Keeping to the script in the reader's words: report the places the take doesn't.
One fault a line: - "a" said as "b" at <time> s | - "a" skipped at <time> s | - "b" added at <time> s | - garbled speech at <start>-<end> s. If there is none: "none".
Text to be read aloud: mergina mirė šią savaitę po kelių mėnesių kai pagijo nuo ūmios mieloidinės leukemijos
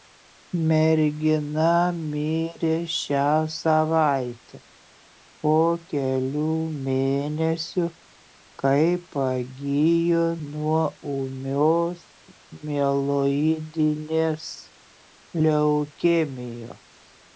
none